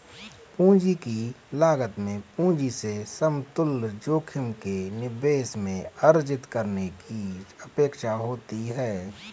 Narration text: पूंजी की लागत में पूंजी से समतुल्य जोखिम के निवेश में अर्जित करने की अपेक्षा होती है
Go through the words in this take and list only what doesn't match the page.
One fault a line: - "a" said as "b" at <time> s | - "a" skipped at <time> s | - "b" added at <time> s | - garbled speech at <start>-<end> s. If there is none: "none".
none